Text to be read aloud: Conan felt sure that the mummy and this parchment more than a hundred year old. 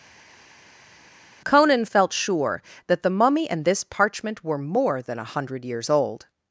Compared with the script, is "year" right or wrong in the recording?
wrong